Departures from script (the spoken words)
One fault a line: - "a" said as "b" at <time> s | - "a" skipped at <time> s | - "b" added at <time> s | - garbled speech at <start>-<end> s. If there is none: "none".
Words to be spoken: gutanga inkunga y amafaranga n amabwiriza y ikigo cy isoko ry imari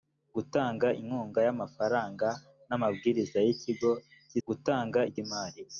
- "isoko" said as "gutanga" at 4.5 s